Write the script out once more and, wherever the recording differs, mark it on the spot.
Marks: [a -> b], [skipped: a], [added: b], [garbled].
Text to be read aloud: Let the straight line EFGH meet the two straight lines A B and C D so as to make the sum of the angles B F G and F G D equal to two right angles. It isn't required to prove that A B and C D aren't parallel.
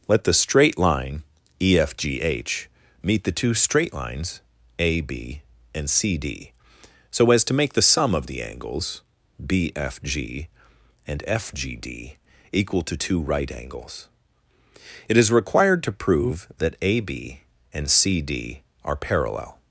Let the straight line EFGH meet the two straight lines A B and C D so as to make the sum of the angles B F G and F G D equal to two right angles. It [isn't -> is] required to prove that A B and C D [aren't -> are] parallel.